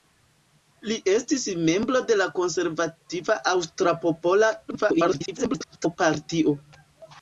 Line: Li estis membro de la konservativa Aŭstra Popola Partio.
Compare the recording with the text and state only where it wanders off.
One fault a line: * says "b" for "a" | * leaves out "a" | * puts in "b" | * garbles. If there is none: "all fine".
* garbles